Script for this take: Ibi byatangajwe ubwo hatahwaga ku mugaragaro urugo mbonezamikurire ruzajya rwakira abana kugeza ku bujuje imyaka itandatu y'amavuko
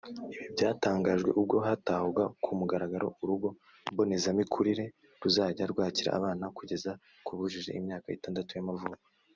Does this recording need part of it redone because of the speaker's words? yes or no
no